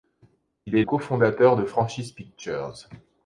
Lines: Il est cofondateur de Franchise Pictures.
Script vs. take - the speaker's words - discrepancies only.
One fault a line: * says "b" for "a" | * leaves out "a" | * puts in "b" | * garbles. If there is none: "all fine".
all fine